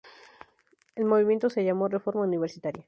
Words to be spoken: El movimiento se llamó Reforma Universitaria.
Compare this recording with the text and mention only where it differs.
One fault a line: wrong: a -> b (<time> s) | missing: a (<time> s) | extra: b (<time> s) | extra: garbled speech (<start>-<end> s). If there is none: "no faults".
no faults